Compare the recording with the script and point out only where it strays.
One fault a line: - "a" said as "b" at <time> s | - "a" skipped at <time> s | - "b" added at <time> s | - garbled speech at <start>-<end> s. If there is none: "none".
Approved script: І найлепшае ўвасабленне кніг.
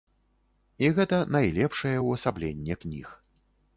- "гэта" added at 1.0 s